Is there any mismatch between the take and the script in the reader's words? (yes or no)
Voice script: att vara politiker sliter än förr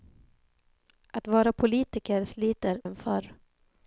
no